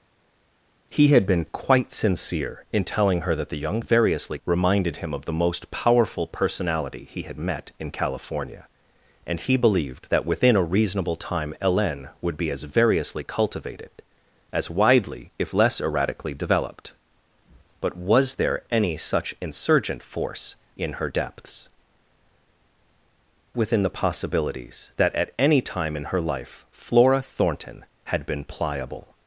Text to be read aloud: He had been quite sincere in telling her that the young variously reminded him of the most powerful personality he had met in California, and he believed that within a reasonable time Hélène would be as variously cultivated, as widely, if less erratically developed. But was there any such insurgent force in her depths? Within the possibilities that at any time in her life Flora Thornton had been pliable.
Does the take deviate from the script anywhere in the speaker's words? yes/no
no